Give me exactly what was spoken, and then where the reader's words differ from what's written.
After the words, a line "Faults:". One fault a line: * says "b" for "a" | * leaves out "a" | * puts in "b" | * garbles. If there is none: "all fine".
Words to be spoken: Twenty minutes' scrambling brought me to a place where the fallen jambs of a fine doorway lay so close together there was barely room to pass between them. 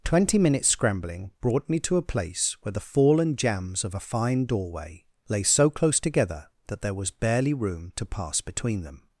Twenty minutes' scrambling brought me to a place where the fallen jambs of a fine doorway lay so close together that there was barely room to pass between them.
Faults:
* puts in "that"